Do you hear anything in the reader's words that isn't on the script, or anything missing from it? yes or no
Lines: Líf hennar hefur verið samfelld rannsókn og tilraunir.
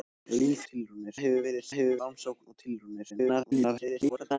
yes